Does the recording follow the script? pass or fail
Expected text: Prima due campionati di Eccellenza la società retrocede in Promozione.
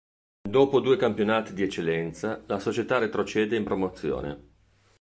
fail